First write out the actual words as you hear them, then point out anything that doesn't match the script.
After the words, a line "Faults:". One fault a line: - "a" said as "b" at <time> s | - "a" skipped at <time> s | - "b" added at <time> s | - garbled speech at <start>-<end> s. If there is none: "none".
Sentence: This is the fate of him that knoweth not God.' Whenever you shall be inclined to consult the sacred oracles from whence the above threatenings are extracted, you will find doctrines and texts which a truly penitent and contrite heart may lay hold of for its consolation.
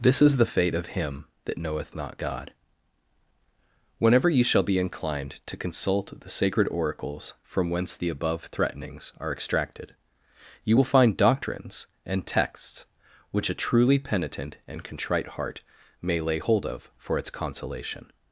This is the fate of him that knoweth not God.' Whenever you shall be inclined to consult the sacred oracles from whence the above threatenings are extracted, you will find doctrines and texts which a truly penitent and contrite heart may lay hold of for its consolation.
Faults:
none